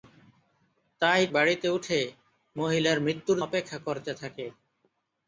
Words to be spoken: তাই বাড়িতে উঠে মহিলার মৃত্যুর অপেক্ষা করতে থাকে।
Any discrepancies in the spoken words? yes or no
no